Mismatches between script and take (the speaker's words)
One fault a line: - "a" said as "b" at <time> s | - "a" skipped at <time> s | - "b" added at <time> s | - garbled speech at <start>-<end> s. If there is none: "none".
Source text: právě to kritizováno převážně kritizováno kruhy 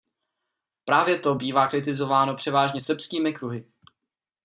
- "bývá" added at 1.3 s
- "kritizováno" said as "srbskými" at 2.8 s